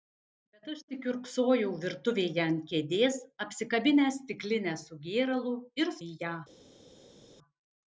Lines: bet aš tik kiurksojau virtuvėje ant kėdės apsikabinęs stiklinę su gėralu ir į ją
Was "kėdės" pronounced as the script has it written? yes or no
yes